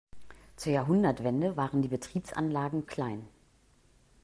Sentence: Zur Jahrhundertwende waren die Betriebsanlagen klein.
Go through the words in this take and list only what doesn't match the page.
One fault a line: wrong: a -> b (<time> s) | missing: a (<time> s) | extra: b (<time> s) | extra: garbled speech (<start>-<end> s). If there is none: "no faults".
no faults